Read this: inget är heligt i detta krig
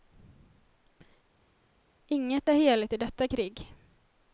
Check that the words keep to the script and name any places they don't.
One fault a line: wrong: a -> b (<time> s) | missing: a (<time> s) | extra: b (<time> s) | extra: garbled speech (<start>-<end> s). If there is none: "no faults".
no faults